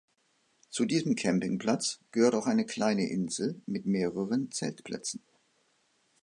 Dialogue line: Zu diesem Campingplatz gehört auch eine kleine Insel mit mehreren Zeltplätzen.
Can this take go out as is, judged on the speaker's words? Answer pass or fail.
pass